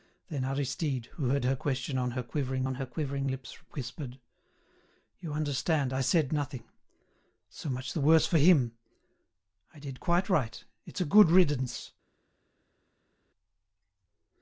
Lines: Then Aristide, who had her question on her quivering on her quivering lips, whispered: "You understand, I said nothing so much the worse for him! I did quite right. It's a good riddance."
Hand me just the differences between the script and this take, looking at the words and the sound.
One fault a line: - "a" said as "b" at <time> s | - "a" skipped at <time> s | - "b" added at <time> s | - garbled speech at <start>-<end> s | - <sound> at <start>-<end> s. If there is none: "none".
none